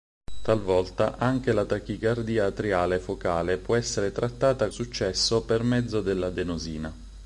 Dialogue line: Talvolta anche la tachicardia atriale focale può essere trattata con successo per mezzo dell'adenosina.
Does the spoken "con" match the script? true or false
false